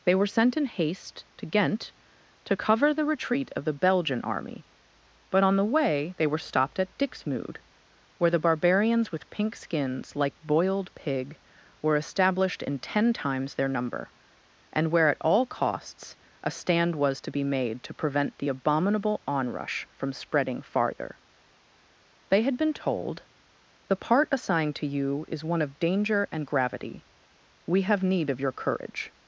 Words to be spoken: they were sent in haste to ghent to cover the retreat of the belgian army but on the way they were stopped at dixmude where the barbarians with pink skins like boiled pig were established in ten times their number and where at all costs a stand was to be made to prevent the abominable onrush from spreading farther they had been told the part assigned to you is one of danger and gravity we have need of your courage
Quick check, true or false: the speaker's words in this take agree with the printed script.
true